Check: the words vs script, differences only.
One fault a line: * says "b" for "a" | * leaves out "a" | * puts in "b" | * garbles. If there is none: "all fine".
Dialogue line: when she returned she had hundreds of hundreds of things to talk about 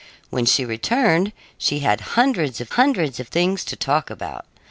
all fine